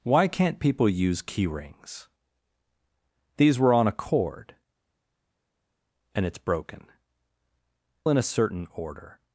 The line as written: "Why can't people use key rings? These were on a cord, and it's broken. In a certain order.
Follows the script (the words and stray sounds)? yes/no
yes